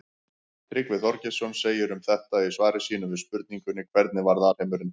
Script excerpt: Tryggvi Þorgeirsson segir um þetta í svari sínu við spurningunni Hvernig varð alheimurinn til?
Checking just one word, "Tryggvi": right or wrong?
right